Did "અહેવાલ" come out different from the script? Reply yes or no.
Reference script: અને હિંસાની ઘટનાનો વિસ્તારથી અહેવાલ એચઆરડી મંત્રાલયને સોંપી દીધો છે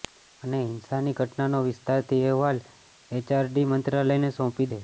no